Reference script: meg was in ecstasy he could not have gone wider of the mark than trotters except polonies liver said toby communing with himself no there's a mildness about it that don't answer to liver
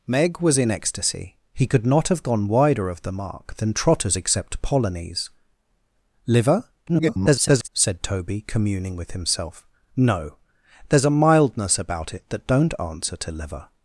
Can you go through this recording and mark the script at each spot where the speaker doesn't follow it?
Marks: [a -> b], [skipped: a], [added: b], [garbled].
meg was in ecstasy he could not have gone wider of the mark than trotters except polonies liver [garbled] said toby communing with himself no there's a mildness about it that don't answer to liver